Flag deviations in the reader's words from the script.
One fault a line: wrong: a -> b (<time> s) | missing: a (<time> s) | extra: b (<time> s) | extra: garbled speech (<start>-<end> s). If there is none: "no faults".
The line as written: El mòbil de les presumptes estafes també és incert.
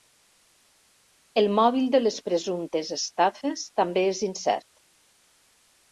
no faults